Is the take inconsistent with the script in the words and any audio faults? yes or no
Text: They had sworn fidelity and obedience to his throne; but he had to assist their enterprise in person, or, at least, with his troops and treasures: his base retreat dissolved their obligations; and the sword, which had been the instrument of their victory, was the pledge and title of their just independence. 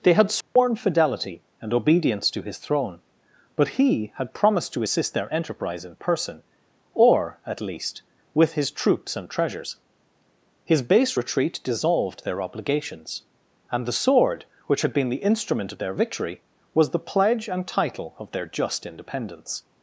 yes